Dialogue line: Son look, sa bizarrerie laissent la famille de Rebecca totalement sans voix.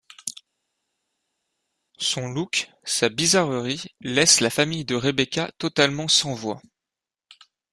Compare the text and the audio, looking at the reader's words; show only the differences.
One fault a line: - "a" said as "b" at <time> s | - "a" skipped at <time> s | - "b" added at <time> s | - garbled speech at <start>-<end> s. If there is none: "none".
none